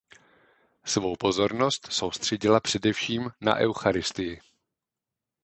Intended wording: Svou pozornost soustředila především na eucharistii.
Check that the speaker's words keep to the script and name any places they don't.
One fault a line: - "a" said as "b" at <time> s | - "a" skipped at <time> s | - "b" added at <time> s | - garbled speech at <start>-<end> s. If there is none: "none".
none